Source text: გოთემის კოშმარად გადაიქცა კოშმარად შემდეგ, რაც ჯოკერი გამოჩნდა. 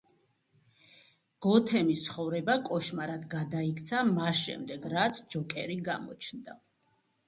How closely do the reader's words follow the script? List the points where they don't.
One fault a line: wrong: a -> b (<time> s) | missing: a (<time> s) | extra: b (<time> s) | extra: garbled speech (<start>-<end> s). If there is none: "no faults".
extra: ცხოვრება (2.0 s)
wrong: კოშმარად -> მას (4.1 s)